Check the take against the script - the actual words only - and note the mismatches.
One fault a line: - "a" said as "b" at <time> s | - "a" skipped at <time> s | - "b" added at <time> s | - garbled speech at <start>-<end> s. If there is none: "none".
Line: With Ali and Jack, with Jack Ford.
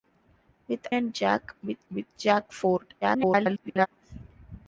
- "Ali" skipped at 0.9 s
- "with" added at 1.9 s
- garbled speech at 3.0-3.9 s